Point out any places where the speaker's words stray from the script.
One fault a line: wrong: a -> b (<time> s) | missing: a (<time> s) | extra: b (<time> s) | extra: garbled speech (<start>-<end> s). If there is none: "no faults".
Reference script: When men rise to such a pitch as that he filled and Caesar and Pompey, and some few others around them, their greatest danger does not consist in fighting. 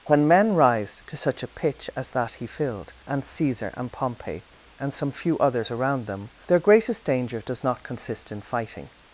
no faults